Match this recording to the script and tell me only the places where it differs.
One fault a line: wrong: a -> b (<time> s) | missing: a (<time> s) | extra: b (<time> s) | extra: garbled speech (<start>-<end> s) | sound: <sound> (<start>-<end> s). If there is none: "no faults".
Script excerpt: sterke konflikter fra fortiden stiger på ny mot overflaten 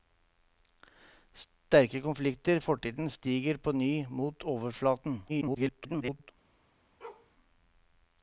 missing: fra (2.6 s)
extra: garbled speech (5.3-6.3 s)
sound: bark (7.0-7.3 s)